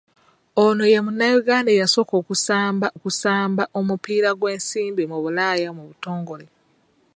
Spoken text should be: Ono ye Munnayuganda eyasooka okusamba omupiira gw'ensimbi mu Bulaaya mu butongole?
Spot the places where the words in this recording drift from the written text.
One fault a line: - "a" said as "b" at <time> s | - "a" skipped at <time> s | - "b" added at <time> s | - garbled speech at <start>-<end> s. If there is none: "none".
- "okusamba" added at 3.0 s